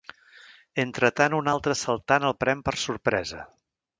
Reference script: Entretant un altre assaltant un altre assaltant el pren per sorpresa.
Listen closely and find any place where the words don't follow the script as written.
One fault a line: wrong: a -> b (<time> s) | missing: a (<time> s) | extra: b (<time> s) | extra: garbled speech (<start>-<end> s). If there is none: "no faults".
missing: un altre assaltant (2.3 s)